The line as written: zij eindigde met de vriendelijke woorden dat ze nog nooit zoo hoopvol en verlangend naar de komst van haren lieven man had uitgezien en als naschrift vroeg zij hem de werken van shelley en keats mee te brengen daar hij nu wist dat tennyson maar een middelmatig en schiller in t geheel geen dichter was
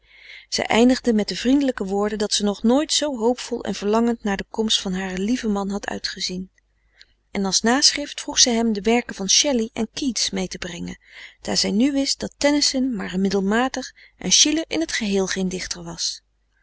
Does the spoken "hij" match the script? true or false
false